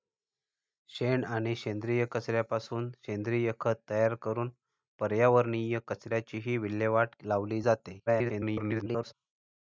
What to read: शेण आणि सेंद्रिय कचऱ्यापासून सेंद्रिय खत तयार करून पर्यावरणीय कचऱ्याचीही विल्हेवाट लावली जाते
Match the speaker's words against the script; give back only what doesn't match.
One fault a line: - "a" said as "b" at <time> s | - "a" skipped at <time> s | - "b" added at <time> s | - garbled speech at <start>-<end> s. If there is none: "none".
- garbled speech at 8.1-9.1 s